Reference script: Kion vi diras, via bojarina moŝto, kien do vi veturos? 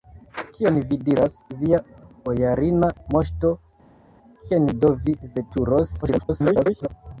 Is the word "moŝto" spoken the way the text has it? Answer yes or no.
yes